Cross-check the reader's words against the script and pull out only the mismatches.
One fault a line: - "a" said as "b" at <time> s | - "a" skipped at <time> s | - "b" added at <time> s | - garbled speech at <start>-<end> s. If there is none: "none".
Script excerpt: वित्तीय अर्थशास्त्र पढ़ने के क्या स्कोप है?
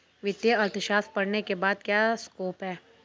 - "बाद" added at 1.6 s